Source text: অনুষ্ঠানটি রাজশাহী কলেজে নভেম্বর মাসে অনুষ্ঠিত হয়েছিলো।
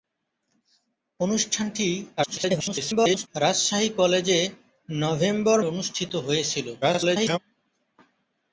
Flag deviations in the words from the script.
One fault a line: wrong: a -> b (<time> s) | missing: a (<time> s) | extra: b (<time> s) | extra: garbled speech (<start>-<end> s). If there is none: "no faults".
extra: garbled speech (2.2-3.3 s)
missing: মাসে (5.6 s)
extra: garbled speech (6.8-7.4 s)